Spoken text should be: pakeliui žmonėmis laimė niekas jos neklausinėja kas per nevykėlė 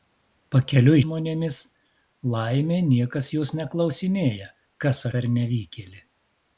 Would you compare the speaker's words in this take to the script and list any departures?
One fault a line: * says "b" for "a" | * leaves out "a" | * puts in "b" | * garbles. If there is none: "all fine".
all fine